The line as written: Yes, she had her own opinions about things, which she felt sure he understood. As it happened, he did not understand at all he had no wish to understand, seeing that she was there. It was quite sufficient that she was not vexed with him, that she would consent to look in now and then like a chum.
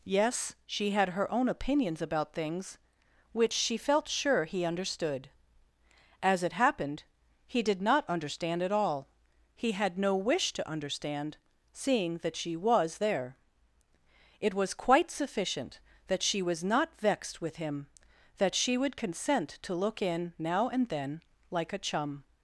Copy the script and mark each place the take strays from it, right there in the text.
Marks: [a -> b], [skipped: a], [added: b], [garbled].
Yes, she had her own opinions about things, which she felt sure he understood. As it happened, he did not understand at all he had no wish to understand, seeing that she was there. It was quite sufficient that she was not vexed with him, that she would consent to look in now and then like a chum.